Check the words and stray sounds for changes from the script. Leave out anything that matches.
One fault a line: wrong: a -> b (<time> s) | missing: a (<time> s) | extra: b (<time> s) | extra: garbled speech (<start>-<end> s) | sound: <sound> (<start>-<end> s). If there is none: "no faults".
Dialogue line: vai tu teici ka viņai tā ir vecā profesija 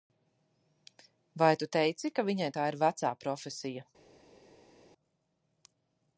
no faults